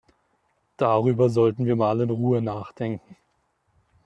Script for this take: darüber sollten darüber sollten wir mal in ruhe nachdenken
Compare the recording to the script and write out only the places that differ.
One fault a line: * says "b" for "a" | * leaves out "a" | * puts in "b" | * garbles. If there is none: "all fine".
* leaves out "darüber sollten"